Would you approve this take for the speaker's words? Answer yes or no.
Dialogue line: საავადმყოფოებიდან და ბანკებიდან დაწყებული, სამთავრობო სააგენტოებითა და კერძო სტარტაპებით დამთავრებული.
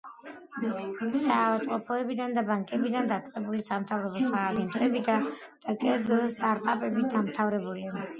yes